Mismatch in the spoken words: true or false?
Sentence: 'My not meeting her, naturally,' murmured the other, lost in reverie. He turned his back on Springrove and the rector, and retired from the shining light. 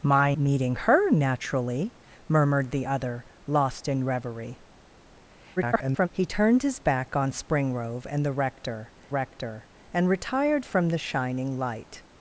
true